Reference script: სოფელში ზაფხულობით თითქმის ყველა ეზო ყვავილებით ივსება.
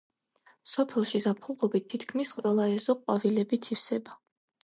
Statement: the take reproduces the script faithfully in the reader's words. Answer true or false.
true